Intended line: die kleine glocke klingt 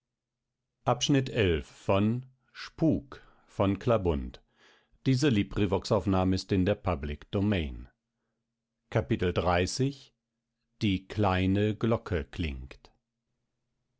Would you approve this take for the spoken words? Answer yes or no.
yes